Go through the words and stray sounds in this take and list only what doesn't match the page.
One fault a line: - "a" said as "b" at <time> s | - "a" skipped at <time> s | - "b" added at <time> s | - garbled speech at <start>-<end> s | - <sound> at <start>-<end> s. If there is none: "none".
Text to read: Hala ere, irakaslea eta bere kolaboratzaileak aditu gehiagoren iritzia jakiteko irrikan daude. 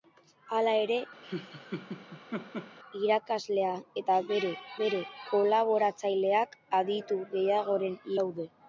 - laugh at 1.2-2.8 s
- "bere" added at 4.8 s
- "iritzia jakiteko irrikan" skipped at 8.0 s